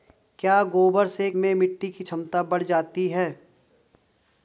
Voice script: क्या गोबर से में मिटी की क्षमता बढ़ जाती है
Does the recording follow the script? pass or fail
pass